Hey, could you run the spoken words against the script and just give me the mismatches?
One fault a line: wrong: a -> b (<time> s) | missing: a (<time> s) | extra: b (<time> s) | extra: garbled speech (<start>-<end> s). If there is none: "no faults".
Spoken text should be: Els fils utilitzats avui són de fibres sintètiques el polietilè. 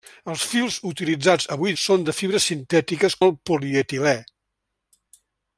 no faults